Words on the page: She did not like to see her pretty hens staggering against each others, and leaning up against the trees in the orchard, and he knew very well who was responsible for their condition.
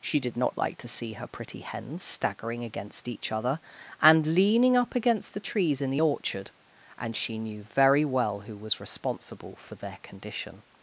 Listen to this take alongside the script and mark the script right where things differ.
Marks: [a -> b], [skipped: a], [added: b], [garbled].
She did not like to see her pretty hens staggering against each [others, -> other] and leaning up against the trees in the orchard, and [he -> she] knew very well who was responsible for their condition.